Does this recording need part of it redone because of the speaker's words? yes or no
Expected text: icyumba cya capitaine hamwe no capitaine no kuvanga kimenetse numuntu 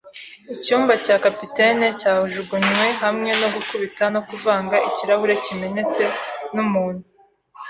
yes